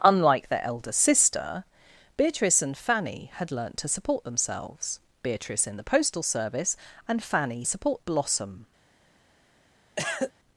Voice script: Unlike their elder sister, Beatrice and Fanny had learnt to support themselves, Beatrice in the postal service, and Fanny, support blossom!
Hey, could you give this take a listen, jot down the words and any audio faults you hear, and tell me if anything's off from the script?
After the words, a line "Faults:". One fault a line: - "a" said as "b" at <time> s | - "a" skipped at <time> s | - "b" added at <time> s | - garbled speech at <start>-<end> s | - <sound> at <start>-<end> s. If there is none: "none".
Unlike their elder sister, Beatrice and Fanny had learnt to support themselves, Beatrice in the postal service, and Fanny, support blossom!
Faults:
- cough at 10.0-10.3 s